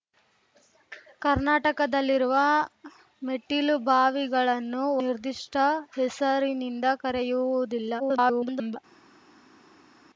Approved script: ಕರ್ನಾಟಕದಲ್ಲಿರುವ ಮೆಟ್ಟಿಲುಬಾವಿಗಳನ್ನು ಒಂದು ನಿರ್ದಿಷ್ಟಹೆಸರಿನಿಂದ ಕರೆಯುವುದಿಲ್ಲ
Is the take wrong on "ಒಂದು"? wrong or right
wrong